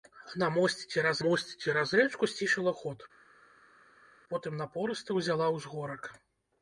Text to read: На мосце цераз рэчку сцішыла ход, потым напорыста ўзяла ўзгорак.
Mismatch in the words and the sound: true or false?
true